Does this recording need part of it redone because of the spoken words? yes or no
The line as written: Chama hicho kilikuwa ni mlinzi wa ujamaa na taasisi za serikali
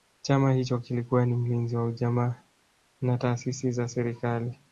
no